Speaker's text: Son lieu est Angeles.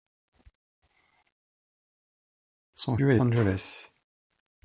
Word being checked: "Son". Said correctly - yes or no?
yes